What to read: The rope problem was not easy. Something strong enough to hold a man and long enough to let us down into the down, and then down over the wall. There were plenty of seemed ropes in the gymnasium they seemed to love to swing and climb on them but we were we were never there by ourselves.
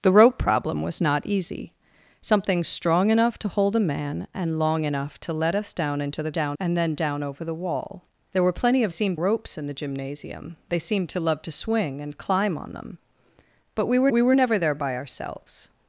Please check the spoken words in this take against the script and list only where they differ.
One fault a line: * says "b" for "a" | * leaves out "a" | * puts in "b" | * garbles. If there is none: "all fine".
all fine